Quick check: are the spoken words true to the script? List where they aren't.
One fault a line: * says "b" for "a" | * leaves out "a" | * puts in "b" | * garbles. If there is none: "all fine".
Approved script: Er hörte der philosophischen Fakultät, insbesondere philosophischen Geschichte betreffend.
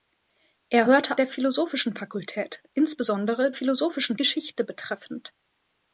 all fine